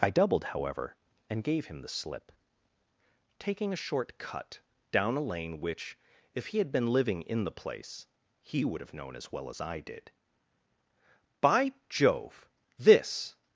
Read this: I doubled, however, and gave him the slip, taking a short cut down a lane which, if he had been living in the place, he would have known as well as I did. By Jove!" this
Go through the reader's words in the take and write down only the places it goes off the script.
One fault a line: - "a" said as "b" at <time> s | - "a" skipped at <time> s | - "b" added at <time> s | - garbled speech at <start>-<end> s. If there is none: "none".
none